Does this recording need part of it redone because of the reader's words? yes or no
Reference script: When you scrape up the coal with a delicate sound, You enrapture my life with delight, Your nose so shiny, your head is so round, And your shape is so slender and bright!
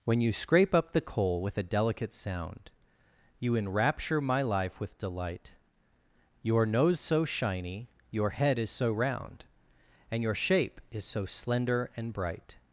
no